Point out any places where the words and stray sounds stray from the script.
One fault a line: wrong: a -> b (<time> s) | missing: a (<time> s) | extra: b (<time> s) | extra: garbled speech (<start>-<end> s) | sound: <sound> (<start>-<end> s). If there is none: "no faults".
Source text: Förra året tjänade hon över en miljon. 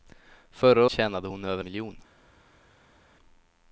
missing: året (0.8 s)
missing: en (1.6 s)